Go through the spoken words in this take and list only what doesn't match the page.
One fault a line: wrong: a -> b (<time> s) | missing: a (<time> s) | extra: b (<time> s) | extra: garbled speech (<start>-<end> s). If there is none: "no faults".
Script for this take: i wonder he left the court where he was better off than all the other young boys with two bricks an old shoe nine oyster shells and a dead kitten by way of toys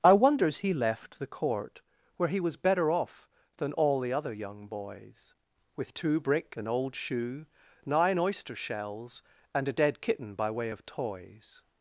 wrong: wonder -> wonders (0.1 s)
wrong: bricks -> brick (6.2 s)